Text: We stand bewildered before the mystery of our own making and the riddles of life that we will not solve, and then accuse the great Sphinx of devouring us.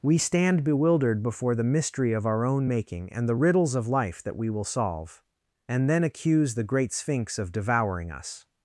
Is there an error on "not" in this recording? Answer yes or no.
yes